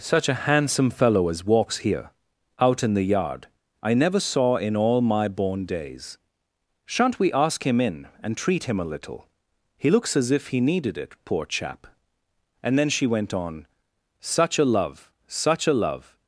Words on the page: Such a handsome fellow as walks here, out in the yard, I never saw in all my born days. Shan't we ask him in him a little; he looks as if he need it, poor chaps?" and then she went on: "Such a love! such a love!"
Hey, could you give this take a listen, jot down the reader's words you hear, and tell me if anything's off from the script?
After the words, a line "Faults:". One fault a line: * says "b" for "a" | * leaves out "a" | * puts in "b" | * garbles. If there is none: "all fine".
Such a handsome fellow as walks here, out in the yard, I never saw in all my born days. Shan't we ask him in and treat him a little; he looks as if he needed it, poor chap?" and then she went on: "Such a love! such a love!"
Faults:
* puts in "and treat"
* says "needed" for "need"
* says "chap" for "chaps"